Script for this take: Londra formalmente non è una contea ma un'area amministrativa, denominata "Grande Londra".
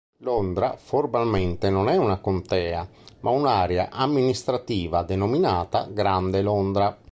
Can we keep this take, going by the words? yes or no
yes